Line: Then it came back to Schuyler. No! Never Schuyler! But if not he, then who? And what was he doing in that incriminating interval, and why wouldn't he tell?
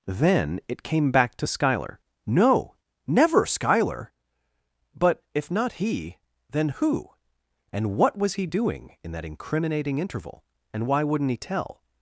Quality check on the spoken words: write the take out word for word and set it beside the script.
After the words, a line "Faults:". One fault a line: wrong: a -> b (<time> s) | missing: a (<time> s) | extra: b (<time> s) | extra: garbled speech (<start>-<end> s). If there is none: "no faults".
Then it came back to Schuyler. No! Never Schuyler! But if not he, then who? And what was he doing in that incriminating interval, and why wouldn't he tell?
Faults:
no faults